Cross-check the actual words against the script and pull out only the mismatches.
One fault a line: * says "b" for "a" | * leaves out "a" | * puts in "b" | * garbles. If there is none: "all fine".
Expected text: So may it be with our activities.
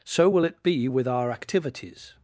* says "will" for "may"